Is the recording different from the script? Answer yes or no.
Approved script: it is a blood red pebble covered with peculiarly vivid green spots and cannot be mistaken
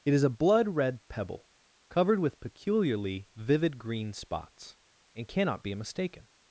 no